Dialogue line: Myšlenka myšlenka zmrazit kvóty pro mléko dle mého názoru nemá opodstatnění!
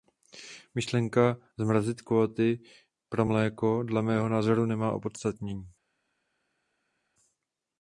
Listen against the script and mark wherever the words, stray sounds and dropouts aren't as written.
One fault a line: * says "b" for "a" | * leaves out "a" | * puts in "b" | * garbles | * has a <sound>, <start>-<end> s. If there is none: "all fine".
* leaves out "myšlenka"